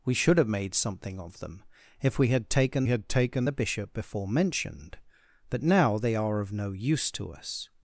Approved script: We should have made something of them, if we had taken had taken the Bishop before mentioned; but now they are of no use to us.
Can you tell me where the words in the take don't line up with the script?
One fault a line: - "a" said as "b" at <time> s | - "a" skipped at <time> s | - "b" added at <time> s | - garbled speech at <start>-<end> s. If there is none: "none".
none